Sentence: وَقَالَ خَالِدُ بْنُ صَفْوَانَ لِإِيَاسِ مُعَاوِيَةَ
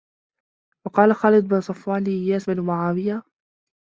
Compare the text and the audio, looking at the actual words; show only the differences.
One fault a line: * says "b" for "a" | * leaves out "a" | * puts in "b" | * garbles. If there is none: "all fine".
* puts in "بْنِ"